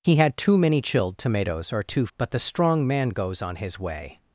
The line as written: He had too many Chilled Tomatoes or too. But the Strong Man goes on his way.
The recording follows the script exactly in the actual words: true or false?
true